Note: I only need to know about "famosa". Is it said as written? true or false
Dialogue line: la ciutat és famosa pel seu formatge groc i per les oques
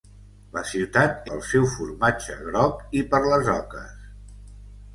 false